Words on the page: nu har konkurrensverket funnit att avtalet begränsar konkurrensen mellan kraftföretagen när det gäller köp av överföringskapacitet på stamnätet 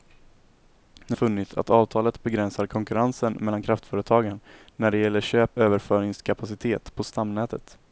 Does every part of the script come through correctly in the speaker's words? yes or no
no